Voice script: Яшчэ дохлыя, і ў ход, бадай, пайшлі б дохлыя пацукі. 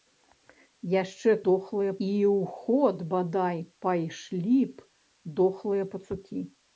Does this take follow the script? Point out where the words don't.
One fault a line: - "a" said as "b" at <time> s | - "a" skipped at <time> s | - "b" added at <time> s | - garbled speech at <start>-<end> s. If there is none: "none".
none